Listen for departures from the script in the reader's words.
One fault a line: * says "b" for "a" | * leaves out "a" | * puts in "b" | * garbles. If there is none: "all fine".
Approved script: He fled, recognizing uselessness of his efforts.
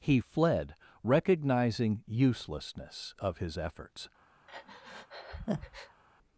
all fine